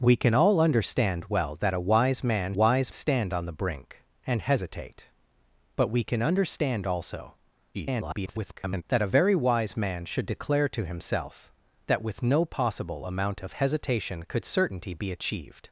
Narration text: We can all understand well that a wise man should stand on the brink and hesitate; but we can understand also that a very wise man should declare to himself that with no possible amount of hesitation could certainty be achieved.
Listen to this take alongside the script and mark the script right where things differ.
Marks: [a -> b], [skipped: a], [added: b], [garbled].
We can all understand well that a wise man [should -> wise] stand on the brink and hesitate; but we can understand also [garbled] that a very wise man should declare to himself that with no possible amount of hesitation could certainty be achieved.